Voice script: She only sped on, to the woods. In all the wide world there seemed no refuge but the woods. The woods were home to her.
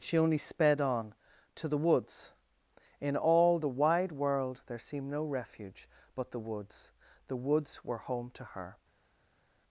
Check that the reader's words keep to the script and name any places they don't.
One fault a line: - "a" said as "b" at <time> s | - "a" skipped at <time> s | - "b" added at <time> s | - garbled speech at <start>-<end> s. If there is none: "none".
none